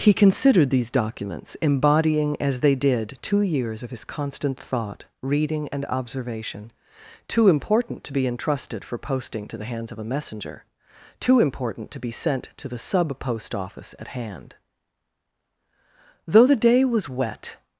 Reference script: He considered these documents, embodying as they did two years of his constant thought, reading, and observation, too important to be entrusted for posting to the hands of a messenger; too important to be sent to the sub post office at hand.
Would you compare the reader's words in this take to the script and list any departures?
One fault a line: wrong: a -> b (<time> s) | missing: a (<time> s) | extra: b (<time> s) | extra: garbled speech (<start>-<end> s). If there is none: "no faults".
extra: Though the day was wet (16.3 s)